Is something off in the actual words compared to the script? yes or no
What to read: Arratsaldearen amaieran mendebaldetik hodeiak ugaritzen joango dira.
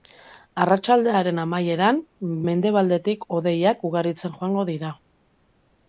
no